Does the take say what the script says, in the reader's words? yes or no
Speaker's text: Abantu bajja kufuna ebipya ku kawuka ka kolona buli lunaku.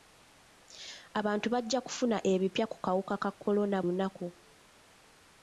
no